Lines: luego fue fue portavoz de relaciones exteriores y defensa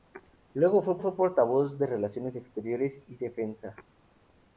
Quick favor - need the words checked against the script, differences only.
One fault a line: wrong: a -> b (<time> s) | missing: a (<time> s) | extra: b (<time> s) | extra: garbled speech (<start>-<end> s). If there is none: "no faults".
no faults